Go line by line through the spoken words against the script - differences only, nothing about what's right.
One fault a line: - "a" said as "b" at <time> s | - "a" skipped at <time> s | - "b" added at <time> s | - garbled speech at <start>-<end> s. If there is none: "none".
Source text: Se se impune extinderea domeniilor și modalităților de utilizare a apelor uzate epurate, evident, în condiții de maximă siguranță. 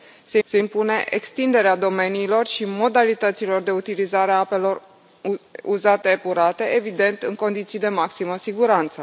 none